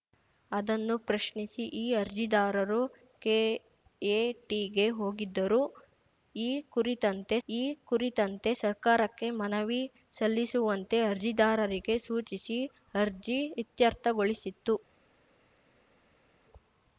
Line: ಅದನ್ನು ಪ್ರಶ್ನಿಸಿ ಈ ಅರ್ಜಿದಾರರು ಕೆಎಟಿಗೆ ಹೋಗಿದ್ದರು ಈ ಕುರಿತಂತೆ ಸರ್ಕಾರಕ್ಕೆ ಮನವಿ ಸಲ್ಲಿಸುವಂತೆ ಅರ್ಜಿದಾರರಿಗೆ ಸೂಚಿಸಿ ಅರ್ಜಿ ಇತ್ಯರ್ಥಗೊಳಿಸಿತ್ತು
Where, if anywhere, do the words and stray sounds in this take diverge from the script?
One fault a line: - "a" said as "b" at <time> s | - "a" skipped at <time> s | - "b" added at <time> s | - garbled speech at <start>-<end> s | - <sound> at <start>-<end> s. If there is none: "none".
- "ಈ ಕುರಿತಂತೆ" added at 7.5 s